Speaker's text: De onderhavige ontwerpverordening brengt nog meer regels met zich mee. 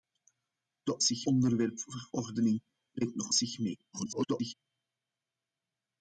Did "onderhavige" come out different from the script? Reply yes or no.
yes